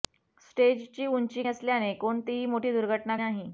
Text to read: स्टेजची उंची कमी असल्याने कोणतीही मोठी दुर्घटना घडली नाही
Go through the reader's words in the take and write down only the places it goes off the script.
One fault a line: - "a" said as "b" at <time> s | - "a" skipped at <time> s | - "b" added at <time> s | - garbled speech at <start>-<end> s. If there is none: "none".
- "कमी" skipped at 1.4 s
- "घडली" skipped at 3.2 s